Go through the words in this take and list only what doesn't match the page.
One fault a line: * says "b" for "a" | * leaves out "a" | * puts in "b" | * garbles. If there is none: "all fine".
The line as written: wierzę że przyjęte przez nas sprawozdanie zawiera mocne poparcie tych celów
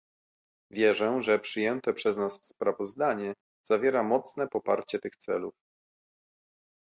all fine